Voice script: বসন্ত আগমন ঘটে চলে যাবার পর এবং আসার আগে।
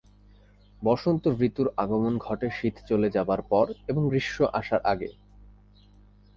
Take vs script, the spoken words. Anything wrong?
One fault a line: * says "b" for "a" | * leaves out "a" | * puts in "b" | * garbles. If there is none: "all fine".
* puts in "ঋতুর"
* puts in "শীত"
* puts in "গ্রীষ্ম"